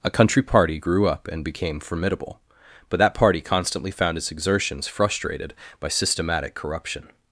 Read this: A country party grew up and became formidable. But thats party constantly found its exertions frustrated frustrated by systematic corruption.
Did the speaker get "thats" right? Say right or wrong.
wrong